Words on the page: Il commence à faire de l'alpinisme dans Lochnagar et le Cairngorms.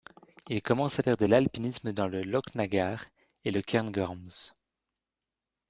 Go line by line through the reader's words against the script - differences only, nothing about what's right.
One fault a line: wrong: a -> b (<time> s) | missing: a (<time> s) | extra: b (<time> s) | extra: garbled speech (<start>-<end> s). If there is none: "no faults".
extra: le (2.1 s)